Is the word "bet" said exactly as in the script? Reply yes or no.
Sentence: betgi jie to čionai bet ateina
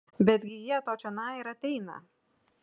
no